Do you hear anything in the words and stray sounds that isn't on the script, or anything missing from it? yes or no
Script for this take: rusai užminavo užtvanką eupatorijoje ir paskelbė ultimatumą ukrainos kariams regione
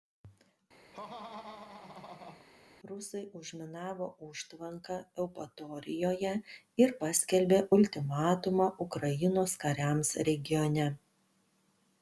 yes